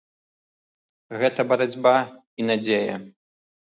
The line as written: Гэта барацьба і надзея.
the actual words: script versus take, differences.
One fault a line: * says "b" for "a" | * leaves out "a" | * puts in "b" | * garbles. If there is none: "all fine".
all fine